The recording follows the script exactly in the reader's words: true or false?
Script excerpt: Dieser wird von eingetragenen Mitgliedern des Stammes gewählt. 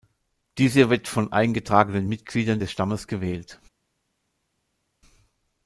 true